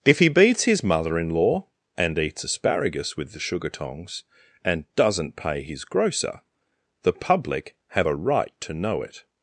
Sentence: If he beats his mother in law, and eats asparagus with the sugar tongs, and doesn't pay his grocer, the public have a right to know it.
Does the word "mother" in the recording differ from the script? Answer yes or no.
no